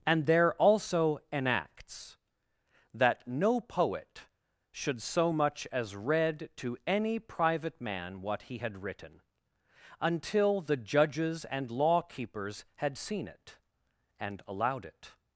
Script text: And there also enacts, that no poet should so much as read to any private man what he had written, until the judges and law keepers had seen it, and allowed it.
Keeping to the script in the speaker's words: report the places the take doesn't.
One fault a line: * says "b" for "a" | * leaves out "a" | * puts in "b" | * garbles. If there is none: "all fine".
all fine